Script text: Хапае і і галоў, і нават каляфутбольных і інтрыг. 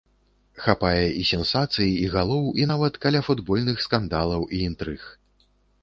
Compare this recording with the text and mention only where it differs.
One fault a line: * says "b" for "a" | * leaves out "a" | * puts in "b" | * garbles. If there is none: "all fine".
* puts in "сенсацый"
* puts in "скандалаў"